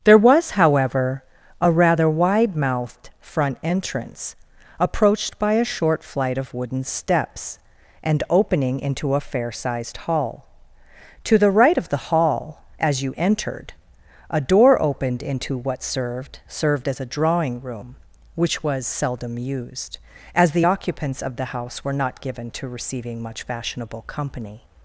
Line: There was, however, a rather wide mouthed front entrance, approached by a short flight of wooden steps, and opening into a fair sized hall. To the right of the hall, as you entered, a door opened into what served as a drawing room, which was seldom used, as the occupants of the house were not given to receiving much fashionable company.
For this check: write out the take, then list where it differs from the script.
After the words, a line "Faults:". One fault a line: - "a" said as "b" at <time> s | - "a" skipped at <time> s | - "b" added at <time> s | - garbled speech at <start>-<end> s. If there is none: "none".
There was, however, a rather wide mouthed front entrance, approached by a short flight of wooden steps, and opening into a fair sized hall. To the right of the hall, as you entered, a door opened into what served served as a drawing room, which was seldom used, as the occupants of the house were not given to receiving much fashionable company.
Faults:
- "served" added at 16.5 s